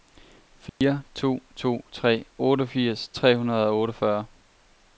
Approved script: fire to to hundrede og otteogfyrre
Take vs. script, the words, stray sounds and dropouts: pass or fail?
fail